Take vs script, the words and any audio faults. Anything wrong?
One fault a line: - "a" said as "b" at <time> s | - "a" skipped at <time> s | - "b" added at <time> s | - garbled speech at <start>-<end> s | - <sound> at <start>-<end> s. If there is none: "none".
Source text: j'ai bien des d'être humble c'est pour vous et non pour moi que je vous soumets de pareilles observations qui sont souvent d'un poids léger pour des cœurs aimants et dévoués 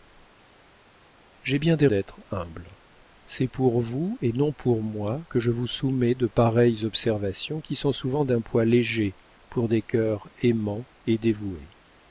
none